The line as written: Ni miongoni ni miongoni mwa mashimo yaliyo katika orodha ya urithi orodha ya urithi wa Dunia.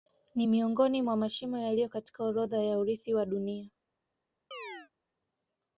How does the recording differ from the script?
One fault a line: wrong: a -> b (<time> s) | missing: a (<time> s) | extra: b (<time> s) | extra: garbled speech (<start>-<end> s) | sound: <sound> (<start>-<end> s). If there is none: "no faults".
missing: ni miongoni (1.0 s)
missing: orodha ya urithi (3.1 s)
sound: chirp (4.5-4.9 s)